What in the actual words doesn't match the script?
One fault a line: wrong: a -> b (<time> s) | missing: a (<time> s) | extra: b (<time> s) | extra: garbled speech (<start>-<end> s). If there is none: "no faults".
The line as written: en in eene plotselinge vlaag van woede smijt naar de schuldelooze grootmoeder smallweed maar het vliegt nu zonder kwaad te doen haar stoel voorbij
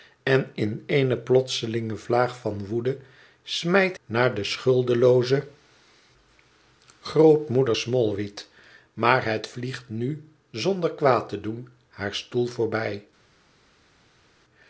no faults